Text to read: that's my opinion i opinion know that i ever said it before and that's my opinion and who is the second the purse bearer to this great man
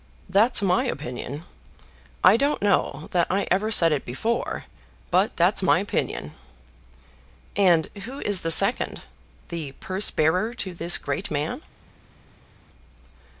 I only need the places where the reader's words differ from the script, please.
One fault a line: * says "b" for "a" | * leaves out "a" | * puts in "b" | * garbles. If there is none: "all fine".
* says "don't" for "opinion"
* says "but" for "and"